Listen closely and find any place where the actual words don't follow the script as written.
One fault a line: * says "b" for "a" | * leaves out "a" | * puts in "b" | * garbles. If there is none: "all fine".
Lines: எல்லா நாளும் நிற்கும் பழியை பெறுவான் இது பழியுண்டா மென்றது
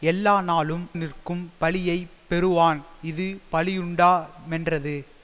all fine